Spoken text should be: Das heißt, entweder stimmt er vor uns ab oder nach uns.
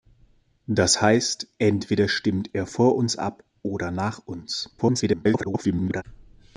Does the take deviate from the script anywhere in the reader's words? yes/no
yes